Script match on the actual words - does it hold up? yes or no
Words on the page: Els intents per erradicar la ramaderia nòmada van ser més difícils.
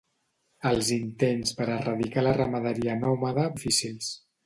no